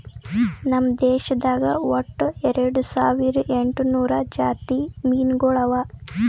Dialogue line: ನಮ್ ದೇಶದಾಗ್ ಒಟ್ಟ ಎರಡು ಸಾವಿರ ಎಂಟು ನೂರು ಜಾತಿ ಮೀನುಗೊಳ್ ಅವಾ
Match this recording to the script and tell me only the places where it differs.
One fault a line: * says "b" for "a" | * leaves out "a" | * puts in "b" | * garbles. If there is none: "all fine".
all fine